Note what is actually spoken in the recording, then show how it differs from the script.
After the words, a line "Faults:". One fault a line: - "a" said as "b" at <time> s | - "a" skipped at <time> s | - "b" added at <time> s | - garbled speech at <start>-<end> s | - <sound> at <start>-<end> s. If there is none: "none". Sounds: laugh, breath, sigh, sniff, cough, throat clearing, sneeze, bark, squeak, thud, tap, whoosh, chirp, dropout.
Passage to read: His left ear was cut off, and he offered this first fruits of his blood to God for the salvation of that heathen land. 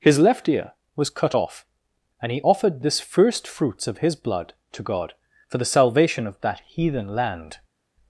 His left ear was cut off, and he offered this first fruits of his blood to God for the salvation of that heathen land.
Faults:
none